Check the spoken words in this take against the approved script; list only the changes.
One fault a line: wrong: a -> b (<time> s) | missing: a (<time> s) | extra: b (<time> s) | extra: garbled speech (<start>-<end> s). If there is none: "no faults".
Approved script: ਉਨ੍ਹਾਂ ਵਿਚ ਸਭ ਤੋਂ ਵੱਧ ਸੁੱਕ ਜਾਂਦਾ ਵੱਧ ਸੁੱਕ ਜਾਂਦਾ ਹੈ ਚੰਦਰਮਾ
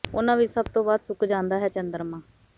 missing: ਵੱਧ ਸੁੱਕ ਜਾਂਦਾ (1.6 s)